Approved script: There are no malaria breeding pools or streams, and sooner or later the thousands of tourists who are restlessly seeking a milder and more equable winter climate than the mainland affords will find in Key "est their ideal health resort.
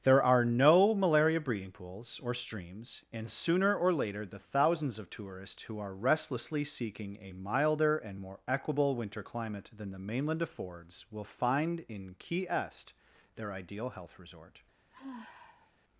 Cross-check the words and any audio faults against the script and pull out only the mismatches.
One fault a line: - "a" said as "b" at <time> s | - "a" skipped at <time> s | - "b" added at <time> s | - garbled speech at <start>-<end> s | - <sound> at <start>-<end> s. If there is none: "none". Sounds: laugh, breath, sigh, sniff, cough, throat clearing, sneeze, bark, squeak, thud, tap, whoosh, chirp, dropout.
- sigh at 14.9-15.7 s